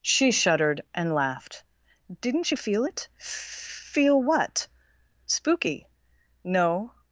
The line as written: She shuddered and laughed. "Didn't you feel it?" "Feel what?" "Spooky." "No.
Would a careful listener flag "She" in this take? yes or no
no